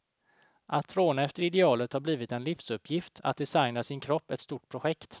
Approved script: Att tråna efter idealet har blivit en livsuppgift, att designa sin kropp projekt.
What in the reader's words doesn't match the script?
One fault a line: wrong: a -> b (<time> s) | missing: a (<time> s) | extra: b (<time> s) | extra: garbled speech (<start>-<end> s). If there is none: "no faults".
extra: ett stort (4.3 s)